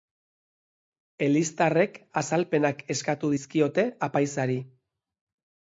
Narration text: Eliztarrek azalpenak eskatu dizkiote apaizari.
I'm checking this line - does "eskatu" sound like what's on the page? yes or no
yes